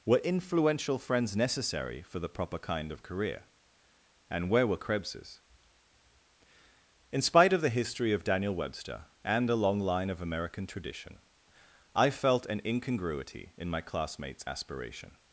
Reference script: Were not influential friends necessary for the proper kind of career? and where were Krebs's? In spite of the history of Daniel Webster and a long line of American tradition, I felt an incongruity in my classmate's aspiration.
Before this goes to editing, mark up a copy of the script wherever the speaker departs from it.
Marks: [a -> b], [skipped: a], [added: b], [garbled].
Were [skipped: not] influential friends necessary for the proper kind of career? and where were Krebs's? In spite of the history of Daniel Webster and a long line of American tradition, I felt an incongruity in my classmate's aspiration.